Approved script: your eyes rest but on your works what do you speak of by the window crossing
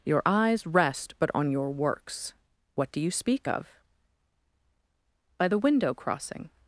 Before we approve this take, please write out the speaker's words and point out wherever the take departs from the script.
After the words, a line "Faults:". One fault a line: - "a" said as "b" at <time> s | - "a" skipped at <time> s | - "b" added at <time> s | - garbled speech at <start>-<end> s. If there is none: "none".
your eyes rest but on your works what do you speak of by the window crossing
Faults:
none